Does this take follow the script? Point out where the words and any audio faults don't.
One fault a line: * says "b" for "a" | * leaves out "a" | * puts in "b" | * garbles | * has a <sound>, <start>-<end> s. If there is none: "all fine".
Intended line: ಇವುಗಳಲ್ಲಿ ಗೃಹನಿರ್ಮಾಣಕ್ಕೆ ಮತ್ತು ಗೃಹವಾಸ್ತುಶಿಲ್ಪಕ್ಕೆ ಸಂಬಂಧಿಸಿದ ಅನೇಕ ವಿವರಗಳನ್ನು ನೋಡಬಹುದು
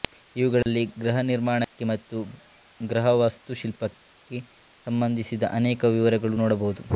* has a dropout, 0.6-0.7 s
* has a dropout, 1.6-1.7 s